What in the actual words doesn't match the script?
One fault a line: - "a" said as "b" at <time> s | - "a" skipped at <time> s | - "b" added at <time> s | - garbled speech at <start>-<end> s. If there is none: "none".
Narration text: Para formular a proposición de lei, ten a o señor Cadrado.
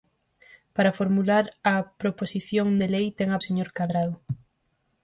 none